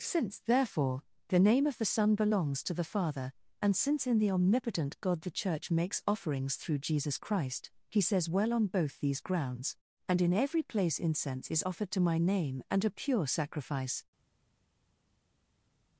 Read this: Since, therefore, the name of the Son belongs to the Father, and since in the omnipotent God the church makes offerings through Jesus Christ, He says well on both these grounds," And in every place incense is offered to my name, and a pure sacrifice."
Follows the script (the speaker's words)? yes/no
yes